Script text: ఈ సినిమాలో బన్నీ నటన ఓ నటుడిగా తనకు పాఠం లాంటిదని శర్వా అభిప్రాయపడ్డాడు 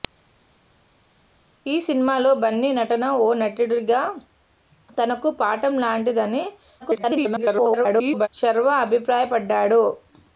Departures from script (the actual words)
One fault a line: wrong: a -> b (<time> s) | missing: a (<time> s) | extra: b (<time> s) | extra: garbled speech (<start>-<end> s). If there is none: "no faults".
extra: garbled speech (6.8-8.3 s)